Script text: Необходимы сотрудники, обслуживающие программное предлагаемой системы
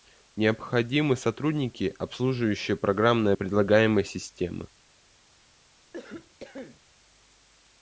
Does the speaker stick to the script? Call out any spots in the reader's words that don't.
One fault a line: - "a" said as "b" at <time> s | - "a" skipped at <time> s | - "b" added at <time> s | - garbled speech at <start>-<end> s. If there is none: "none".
none